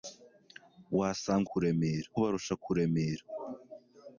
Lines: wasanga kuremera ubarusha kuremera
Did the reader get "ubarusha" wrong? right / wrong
right